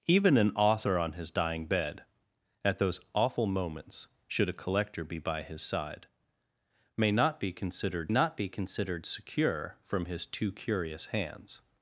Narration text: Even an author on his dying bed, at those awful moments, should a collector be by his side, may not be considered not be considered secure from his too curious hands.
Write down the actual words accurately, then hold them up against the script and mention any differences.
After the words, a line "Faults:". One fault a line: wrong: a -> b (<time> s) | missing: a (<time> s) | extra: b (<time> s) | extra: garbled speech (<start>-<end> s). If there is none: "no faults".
Even an author on his dying bed, at those awful moments, should a collector be by his side, may not be considered not be considered secure from his too curious hands.
Faults:
no faults